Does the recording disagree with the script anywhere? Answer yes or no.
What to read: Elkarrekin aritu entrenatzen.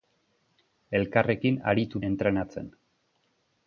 no